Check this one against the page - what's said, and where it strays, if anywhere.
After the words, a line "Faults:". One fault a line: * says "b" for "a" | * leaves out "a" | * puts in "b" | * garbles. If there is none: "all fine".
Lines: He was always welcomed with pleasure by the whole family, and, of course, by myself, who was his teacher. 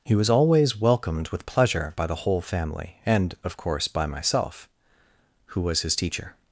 He was always welcomed with pleasure by the whole family, and, of course, by myself, who was his teacher.
Faults:
all fine